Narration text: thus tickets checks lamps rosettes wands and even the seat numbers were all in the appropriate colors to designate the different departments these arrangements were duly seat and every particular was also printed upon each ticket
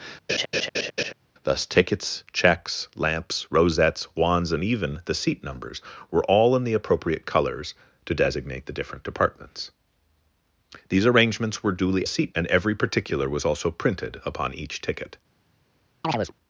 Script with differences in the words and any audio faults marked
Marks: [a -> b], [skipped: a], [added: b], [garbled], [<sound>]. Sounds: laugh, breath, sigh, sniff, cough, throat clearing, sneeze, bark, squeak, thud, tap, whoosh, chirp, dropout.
[laugh] thus tickets checks lamps rosettes wands and even the seat numbers were all in the appropriate colors to designate the different departments these arrangements were duly seat and every particular was also printed upon each ticket [chirp]